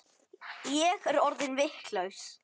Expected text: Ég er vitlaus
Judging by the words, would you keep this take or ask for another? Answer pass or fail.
fail